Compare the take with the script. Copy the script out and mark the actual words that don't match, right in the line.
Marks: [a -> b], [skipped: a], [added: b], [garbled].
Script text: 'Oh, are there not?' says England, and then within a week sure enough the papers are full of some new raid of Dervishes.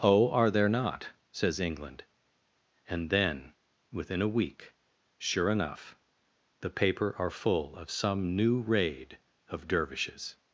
'Oh, are there not?' says England, and then within a week sure enough the [papers -> paper] are full of some new raid of Dervishes.